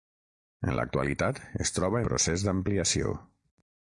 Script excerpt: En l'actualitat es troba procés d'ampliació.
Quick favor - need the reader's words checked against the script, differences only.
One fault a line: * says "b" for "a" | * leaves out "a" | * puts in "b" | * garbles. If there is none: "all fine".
all fine